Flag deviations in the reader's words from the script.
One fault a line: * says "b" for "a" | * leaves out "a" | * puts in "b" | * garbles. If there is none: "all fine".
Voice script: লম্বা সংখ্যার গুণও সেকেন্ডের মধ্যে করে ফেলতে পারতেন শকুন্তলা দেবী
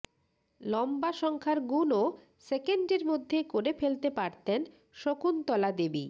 all fine